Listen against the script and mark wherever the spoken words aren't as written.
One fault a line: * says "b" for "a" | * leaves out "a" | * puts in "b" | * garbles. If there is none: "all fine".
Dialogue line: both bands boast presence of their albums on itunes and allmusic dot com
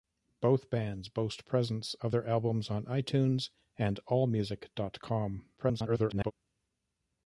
* garbles